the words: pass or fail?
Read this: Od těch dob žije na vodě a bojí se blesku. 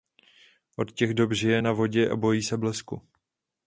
pass